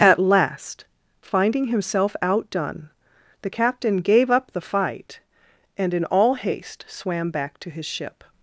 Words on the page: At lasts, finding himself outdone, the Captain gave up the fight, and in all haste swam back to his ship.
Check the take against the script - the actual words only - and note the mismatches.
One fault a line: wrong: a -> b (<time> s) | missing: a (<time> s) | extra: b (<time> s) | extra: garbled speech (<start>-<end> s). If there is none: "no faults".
wrong: lasts -> last (0.2 s)